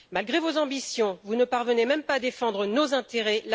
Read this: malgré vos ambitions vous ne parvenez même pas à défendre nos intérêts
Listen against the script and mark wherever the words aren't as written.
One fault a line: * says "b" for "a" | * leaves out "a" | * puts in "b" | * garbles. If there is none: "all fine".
all fine